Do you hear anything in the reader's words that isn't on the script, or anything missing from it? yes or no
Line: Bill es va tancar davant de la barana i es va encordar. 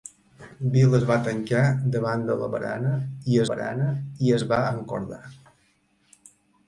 yes